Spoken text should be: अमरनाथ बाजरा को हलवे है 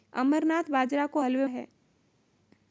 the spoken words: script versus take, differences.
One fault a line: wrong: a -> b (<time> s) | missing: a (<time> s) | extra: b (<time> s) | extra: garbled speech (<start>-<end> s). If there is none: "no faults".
no faults